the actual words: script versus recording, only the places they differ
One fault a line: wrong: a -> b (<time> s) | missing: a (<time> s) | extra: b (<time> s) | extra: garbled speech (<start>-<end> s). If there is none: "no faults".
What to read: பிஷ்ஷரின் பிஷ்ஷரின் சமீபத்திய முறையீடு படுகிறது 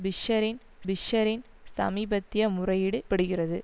no faults